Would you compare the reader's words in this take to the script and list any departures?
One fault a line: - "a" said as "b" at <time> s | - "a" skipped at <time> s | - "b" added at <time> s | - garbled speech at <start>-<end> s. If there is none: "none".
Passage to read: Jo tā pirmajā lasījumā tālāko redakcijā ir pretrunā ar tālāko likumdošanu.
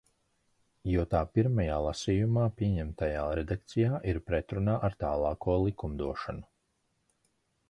- "tālāko" said as "pieņemtajā" at 2.6 s